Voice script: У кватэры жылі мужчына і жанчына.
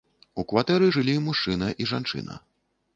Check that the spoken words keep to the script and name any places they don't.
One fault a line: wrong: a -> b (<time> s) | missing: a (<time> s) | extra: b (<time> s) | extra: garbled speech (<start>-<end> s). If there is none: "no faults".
no faults